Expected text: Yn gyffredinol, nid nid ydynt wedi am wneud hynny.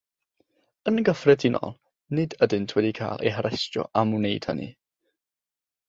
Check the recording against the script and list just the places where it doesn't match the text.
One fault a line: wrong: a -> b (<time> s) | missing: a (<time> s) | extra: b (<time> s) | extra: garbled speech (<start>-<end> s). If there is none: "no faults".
missing: nid (2.4 s)
extra: cael eu harestio (3.0 s)